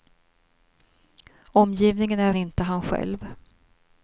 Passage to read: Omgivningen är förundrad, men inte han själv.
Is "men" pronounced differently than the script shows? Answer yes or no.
yes